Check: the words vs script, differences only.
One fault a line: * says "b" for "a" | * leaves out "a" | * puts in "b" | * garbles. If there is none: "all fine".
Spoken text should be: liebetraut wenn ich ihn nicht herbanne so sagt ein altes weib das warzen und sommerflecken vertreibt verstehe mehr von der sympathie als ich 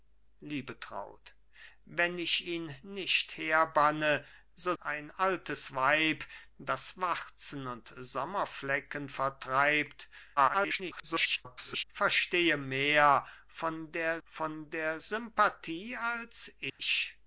* leaves out "sagt"
* garbles
* puts in "von der"